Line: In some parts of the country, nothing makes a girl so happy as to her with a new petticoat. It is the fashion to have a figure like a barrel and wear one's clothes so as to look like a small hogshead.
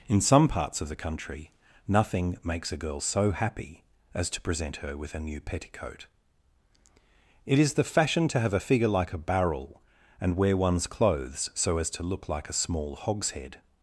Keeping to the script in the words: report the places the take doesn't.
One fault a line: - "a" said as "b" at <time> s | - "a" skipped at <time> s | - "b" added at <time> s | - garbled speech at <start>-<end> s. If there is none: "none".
- "present" added at 4.4 s